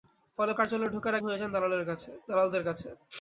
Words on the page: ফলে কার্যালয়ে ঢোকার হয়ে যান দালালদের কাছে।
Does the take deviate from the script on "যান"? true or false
false